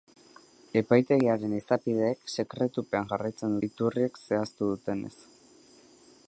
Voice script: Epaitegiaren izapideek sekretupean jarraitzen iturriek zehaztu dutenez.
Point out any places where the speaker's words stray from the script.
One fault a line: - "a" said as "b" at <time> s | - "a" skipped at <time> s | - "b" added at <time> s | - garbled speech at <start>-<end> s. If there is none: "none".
none